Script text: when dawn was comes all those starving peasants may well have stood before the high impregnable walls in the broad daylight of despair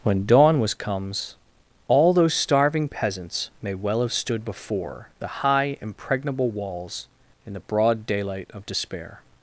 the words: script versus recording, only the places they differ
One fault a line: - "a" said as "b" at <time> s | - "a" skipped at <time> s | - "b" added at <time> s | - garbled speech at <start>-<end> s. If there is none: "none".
none